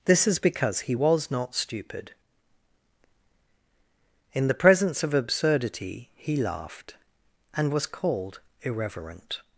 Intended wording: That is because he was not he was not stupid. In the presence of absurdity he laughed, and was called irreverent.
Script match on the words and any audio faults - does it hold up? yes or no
no